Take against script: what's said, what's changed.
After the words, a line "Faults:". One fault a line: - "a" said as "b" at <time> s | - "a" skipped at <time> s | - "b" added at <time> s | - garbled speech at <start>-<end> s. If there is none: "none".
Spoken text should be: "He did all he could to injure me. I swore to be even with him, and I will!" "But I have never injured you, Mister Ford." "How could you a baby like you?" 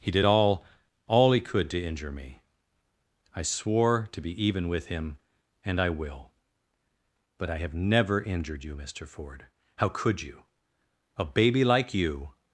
"He did all all he could to injure me. I swore to be even with him, and I will!" "But I have never injured you, Mister Ford." "How could you a baby like you?"
Faults:
- "all" added at 1.1 s